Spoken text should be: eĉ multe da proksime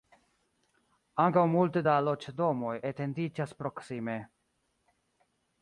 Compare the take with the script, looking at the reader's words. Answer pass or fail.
fail